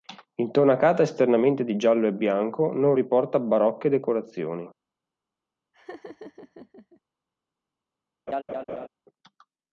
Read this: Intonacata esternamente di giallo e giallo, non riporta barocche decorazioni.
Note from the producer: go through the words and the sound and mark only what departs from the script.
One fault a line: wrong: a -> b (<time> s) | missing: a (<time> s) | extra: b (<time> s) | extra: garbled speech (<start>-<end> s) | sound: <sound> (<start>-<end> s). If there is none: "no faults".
wrong: giallo -> bianco (2.1 s)
sound: laugh (5.7-7.0 s)
sound: laugh (8.3-8.9 s)